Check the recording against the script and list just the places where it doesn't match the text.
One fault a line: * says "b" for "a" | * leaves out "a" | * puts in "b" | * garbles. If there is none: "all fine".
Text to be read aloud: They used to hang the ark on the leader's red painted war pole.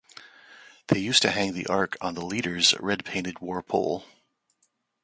all fine